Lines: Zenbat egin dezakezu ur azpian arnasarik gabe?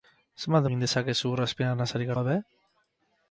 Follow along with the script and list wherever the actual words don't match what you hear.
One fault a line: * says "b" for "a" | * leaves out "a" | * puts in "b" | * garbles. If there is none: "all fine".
all fine